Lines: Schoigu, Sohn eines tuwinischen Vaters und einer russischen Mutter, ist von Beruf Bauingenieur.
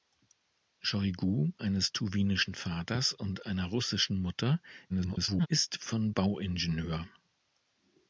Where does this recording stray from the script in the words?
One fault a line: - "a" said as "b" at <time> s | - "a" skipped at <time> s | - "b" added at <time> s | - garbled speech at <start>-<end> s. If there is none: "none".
- "Sohn" skipped at 1.5 s
- garbled speech at 4.9-5.5 s
- "Beruf" skipped at 6.1 s